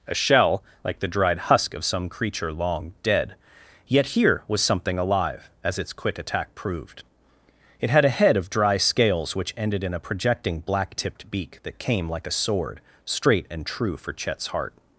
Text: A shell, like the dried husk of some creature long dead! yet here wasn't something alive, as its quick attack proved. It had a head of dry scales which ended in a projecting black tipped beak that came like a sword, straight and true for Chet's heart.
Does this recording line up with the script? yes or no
no